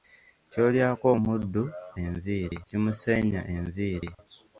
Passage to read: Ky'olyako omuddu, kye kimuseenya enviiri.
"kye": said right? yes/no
no